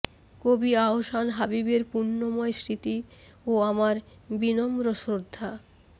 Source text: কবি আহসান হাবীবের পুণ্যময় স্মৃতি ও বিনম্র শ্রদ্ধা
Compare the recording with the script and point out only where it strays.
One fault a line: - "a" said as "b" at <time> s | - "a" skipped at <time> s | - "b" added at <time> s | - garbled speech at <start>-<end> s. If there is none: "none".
- "আমার" added at 3.7 s